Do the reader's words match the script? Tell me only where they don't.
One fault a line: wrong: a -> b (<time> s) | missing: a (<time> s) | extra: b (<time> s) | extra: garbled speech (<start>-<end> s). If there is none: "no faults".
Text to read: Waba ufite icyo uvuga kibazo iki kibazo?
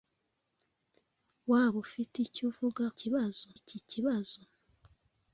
no faults